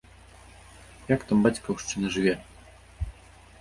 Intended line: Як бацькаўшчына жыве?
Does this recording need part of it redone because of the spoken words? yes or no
yes